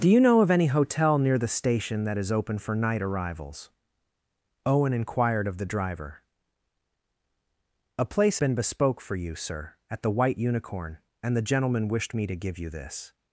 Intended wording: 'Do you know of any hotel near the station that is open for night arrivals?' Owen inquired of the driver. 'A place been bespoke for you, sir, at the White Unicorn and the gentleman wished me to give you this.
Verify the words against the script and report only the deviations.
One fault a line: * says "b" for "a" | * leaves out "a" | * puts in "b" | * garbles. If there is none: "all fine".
all fine